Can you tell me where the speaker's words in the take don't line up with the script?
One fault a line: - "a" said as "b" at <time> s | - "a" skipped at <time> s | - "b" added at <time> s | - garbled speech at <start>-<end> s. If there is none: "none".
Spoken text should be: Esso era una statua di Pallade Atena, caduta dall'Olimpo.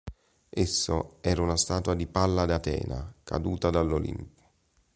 none